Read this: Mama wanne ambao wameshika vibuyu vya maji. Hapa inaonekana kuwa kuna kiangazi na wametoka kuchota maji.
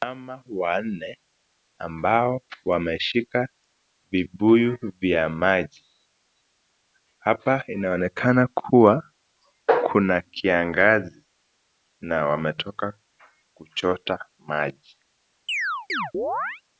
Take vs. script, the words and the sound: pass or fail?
fail